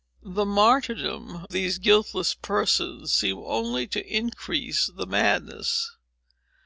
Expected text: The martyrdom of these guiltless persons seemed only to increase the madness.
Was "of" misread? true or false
true